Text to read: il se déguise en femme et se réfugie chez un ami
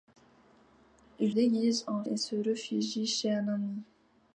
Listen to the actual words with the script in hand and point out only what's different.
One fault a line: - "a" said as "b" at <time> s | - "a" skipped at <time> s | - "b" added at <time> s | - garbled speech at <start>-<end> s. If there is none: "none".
- "se" skipped at 1.4 s
- "femme" skipped at 2.0 s